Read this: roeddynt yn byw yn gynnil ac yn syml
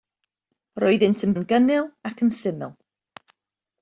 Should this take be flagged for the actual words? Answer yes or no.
yes